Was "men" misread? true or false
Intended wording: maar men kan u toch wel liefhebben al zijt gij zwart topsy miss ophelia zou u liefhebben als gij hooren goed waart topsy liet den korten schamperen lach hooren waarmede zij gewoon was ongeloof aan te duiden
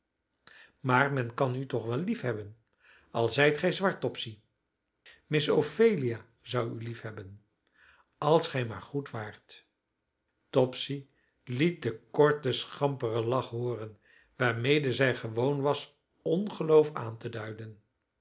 false